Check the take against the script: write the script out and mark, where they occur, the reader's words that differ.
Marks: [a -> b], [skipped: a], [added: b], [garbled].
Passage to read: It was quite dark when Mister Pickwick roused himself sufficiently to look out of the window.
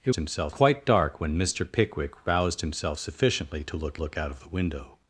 It [was -> himself] quite dark when Mister Pickwick roused himself sufficiently to look [added: look] out of the window.